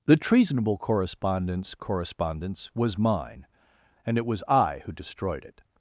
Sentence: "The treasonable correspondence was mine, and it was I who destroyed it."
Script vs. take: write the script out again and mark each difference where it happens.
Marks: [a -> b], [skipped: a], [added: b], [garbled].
"The treasonable correspondence [added: correspondence] was mine, and it was I who destroyed it."